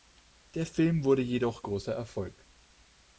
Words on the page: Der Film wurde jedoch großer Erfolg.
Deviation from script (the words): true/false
false